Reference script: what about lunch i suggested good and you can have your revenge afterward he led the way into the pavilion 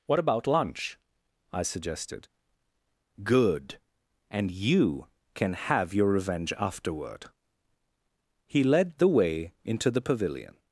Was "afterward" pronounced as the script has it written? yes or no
yes